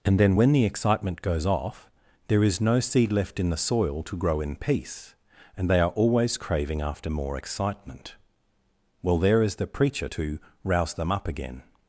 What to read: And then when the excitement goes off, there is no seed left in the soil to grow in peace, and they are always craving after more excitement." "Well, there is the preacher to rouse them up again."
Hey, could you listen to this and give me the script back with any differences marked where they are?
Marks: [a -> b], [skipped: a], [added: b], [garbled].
And then when the excitement goes off, there is no seed left in the soil to grow in peace, and they are always craving after more excitement." "Well, there is the preacher to rouse them up again."